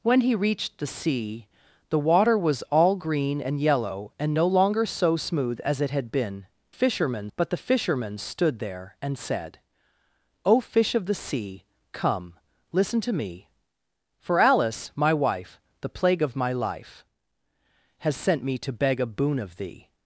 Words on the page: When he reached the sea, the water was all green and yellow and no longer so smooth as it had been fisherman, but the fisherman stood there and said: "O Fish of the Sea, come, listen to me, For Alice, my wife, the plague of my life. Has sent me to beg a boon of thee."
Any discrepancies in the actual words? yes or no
no